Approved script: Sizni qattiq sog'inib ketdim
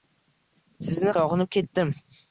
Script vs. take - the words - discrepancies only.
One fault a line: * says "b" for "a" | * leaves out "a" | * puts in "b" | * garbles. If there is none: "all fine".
* leaves out "qattiq"